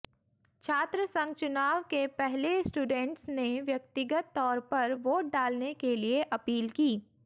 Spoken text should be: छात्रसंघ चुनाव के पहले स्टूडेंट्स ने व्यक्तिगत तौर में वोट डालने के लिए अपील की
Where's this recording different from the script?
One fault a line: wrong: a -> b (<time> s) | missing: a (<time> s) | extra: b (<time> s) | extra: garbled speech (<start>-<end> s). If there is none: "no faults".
wrong: में -> पर (4.7 s)